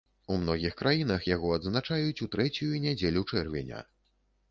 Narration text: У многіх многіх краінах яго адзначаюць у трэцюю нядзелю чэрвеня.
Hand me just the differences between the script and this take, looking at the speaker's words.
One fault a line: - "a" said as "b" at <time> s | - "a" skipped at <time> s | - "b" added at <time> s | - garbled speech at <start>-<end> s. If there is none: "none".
- "многіх" skipped at 0.7 s